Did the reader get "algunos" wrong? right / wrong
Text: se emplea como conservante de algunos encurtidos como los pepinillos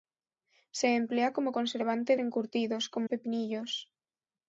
wrong